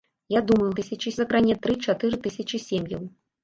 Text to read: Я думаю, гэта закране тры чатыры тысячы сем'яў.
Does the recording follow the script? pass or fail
fail